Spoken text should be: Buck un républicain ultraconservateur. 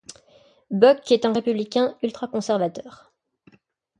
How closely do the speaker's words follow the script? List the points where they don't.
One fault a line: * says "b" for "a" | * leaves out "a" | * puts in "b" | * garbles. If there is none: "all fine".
* puts in "est"